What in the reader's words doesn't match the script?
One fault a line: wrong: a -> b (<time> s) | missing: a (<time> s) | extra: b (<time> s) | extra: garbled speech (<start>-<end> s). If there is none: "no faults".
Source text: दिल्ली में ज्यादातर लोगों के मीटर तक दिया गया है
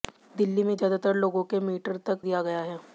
no faults